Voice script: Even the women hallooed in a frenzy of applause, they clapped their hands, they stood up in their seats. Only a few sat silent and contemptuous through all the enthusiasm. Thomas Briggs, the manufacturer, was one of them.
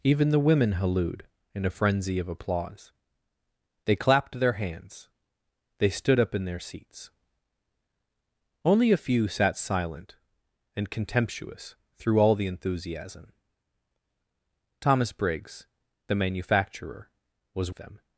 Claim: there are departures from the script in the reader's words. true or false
true